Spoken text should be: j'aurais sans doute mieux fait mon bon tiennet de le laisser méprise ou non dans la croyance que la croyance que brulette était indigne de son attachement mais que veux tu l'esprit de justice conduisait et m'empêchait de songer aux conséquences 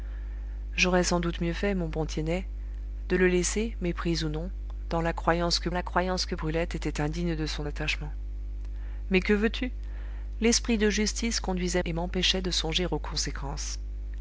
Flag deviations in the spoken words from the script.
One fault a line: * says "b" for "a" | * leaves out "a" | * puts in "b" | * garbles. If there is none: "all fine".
all fine